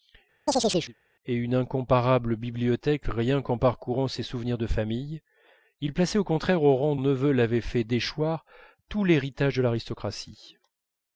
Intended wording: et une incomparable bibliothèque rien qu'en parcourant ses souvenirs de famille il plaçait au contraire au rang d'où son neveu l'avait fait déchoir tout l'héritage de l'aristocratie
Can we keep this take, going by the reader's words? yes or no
no